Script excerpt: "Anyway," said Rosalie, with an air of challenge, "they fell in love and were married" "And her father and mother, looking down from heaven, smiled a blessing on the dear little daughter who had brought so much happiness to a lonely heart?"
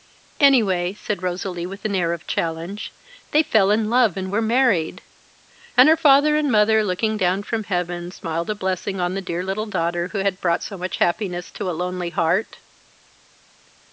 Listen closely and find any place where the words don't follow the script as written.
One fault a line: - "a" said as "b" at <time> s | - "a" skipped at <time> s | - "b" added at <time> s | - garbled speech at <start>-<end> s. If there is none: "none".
none